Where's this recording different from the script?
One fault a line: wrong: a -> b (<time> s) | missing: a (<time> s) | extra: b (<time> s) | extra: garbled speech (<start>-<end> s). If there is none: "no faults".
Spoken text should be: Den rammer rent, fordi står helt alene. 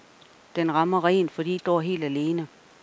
no faults